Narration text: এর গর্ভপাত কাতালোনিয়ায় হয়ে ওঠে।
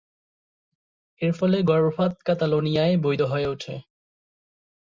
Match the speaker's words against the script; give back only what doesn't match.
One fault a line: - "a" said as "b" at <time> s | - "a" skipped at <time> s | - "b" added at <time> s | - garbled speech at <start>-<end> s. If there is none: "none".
- "ফলে" added at 1.3 s
- "বৈধ" added at 3.0 s